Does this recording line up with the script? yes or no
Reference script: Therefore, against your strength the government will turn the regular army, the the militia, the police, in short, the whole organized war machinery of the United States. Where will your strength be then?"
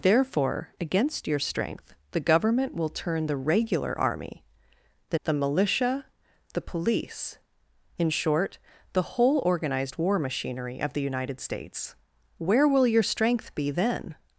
yes